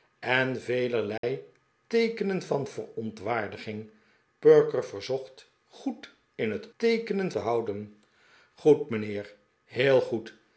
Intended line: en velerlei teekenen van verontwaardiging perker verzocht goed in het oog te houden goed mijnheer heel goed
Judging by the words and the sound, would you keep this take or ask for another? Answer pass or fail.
fail